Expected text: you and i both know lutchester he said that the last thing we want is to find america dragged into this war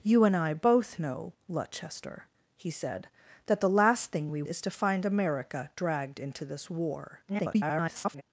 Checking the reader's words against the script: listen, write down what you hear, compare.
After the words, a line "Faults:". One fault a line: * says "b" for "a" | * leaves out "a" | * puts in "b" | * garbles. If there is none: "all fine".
you and i both know lutchester he said that the last thing we is to find america dragged into this war [garbled]
Faults:
* leaves out "want"
* garbles